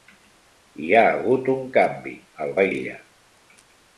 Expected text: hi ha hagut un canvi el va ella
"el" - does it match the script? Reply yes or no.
yes